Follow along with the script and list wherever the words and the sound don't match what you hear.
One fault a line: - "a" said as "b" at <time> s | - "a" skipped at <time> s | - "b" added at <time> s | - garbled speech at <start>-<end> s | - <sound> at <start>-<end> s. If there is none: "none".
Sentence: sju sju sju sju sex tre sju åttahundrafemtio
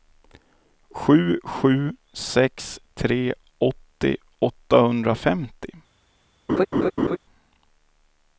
- "sju sju" skipped at 1.9 s
- "sju" said as "åttio" at 3.6 s
- laugh at 6.5-7.2 s